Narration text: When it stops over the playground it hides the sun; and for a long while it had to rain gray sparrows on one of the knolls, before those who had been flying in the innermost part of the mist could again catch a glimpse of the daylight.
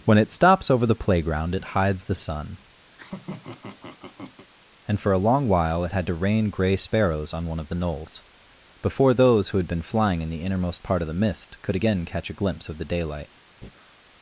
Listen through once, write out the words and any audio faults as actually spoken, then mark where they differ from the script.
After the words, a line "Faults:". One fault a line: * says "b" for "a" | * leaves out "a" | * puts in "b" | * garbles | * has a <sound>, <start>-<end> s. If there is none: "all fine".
When it stops over the playground it hides the sun; and for a long while it had to rain gray sparrows on one of the knolls, before those who had been flying in the innermost part of the mist could again catch a glimpse of the daylight.
Faults:
* has a laugh, 2.9-4.5 s
* has a breath, 13.6-14.0 s